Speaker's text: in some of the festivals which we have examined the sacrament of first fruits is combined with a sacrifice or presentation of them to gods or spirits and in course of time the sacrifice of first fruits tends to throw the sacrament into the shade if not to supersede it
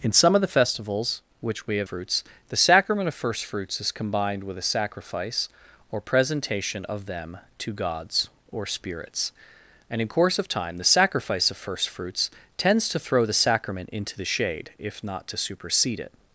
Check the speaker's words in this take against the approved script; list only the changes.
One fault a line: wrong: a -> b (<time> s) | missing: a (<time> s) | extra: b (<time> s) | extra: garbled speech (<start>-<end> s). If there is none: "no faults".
wrong: examined -> fruits (1.8 s)